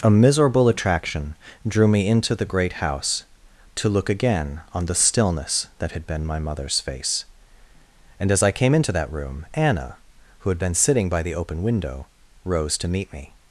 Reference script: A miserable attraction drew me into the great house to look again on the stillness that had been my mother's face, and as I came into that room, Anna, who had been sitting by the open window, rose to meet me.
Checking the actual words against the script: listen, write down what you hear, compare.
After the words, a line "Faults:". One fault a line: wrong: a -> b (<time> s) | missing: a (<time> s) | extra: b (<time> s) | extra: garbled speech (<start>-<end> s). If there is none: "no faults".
A miserable attraction drew me into the great house to look again on the stillness that had been my mother's face, and as I came into that room, Anna, who had been sitting by the open window, rose to meet me.
Faults:
no faults